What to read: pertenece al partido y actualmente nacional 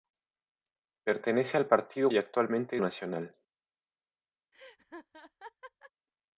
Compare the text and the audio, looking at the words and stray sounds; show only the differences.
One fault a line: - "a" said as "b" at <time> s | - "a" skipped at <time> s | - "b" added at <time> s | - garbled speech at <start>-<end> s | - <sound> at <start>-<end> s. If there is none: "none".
- laugh at 4.5-5.9 s